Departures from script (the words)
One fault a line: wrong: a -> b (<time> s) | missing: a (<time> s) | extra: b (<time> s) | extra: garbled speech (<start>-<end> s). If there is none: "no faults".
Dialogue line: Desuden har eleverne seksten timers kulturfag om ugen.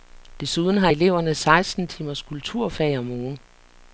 no faults